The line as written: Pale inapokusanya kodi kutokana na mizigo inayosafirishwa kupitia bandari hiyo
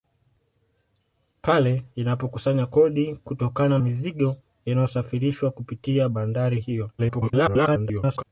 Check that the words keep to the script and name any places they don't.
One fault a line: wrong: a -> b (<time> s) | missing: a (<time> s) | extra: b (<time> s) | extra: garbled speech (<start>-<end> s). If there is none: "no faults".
missing: na (3.8 s)
extra: garbled speech (7.0-8.2 s)